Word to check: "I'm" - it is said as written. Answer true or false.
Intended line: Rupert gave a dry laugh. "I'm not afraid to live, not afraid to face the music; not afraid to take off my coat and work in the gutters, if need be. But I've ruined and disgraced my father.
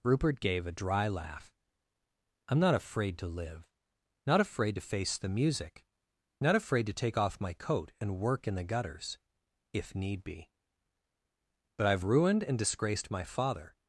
true